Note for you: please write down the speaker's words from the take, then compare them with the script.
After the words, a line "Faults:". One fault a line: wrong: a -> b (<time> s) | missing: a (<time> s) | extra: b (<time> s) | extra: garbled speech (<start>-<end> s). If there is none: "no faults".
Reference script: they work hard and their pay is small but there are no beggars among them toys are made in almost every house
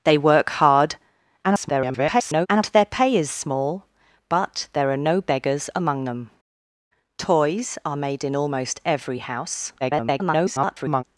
they work hard [garbled] and their pay is small but there are no beggars among them toys are made in almost every house [garbled]
Faults:
extra: garbled speech (1.4-2.5 s)
extra: garbled speech (9.8-11.0 s)